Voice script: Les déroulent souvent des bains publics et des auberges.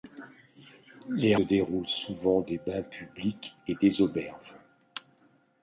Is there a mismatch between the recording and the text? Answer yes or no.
no